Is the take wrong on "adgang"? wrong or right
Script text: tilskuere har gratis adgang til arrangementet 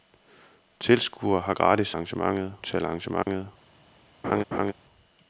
wrong